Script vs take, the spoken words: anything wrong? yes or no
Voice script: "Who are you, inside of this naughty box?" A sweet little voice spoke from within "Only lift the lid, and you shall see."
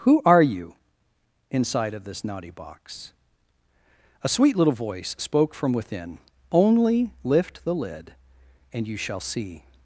no